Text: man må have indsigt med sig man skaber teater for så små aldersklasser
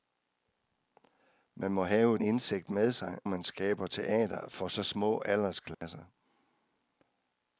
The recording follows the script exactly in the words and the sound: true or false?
false